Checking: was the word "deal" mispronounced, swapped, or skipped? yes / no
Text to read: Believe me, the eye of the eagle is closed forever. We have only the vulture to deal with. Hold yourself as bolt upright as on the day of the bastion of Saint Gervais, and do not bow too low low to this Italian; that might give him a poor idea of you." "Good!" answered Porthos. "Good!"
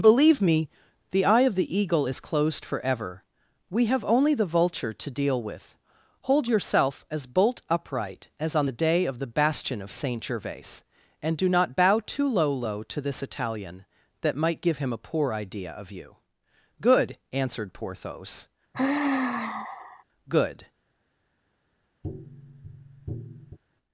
no